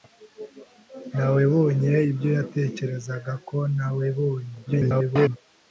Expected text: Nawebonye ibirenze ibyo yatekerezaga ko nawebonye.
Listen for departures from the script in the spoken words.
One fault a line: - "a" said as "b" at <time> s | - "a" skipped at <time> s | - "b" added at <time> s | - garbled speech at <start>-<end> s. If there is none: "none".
- "ibirenze" skipped at 1.9 s
- garbled speech at 4.7-5.4 s